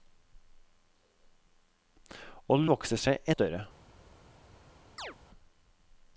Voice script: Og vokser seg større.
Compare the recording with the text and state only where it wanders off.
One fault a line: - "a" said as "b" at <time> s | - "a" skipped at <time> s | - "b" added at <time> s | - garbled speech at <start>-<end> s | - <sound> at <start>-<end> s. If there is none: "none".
- chirp at 5.0-5.2 s